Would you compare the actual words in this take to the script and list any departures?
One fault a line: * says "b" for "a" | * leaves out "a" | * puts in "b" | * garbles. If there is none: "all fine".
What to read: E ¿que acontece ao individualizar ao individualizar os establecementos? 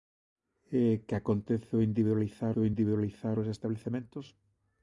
all fine